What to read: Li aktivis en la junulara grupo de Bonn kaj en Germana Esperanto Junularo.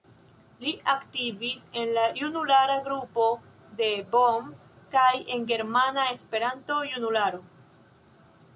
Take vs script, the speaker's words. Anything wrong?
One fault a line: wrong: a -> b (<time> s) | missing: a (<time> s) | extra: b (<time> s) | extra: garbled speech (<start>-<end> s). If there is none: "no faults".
no faults